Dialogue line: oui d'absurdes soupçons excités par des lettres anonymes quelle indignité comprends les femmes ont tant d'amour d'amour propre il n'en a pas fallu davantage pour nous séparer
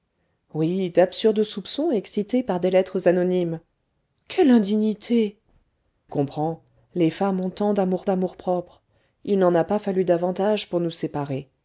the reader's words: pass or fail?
pass